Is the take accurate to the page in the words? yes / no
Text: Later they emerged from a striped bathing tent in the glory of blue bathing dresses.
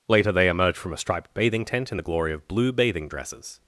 no